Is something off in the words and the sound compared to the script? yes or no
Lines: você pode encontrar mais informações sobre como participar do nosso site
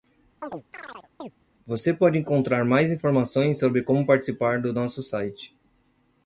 yes